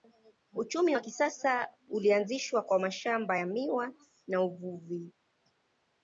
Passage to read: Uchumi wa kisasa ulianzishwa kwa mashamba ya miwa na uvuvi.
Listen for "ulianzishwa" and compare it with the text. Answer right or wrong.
right